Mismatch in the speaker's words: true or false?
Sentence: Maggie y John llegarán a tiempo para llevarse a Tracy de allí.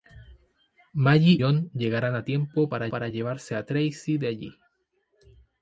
true